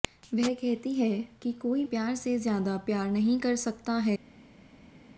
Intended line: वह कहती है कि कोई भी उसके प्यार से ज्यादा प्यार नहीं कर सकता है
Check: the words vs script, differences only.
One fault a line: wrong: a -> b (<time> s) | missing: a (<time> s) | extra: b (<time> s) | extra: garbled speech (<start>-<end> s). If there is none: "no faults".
missing: भी उसके (1.8 s)